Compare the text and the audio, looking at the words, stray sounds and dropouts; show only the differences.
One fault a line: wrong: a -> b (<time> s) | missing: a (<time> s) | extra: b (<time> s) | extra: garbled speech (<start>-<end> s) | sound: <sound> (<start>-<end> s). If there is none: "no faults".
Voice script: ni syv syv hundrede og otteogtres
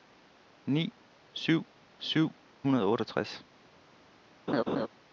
sound: laugh (4.5-4.9 s)